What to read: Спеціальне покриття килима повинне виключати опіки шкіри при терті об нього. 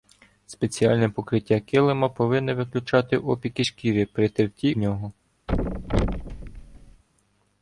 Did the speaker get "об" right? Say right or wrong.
wrong